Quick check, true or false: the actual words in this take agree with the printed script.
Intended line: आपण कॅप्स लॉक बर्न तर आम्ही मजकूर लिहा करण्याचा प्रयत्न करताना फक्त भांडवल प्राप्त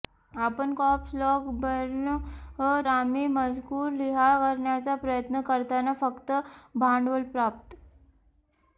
false